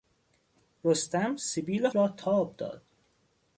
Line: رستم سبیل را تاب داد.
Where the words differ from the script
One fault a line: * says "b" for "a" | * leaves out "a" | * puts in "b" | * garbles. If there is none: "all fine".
all fine